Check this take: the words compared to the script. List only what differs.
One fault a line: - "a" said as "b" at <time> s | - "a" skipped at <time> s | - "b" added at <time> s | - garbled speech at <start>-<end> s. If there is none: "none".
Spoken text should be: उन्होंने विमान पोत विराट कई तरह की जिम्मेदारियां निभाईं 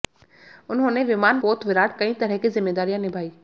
none